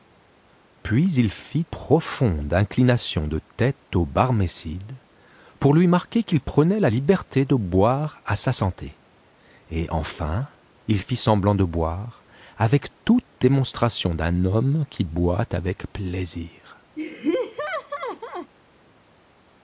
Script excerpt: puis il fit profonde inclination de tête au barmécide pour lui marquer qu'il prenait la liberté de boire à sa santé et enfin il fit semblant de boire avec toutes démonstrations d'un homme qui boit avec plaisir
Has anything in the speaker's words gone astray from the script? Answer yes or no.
no